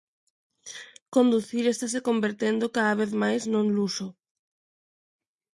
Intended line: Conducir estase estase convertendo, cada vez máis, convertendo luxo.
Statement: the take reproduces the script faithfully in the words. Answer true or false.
false